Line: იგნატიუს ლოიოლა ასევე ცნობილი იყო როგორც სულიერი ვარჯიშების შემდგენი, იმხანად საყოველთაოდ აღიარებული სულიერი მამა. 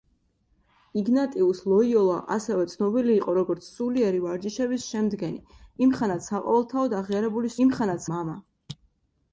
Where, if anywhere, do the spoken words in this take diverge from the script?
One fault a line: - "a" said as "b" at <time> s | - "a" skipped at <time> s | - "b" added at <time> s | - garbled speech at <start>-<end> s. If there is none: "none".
- "სულიერი" said as "იმხანად" at 7.7 s